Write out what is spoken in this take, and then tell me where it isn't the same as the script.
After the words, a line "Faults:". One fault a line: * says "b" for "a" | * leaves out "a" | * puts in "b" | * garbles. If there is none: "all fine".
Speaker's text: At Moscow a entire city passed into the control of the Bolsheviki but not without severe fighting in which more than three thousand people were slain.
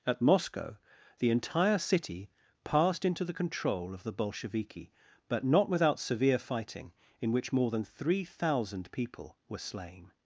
At Moscow the entire city passed into the control of the Bolsheviki but not without severe fighting in which more than three thousand people were slain.
Faults:
* says "the" for "a"